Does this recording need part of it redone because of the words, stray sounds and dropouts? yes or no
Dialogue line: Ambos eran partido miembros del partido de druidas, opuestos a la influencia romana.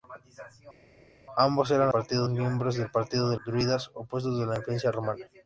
no